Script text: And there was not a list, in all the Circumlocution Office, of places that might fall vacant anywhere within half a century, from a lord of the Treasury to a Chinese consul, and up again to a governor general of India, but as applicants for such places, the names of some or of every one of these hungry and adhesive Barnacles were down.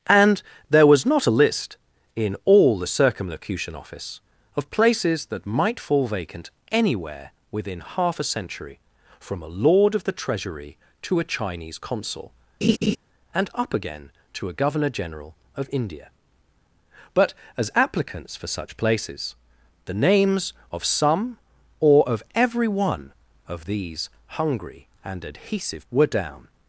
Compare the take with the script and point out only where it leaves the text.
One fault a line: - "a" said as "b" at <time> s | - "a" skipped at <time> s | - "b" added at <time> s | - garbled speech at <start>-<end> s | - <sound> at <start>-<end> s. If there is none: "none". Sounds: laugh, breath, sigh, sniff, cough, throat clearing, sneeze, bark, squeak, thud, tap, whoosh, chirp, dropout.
- laugh at 12.6-13.0 s
- "Barnacles" skipped at 25.9 s